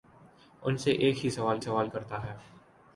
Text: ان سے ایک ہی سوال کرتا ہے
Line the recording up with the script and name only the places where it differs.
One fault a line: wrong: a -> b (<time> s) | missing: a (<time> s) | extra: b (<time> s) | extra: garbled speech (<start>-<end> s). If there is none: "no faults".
extra: سوال (1.6 s)